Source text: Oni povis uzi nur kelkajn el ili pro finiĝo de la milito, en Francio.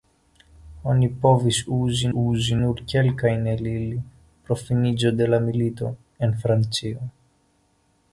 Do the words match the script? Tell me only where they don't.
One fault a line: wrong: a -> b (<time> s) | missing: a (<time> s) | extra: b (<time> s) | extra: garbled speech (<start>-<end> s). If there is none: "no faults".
extra: uzi (2.2 s)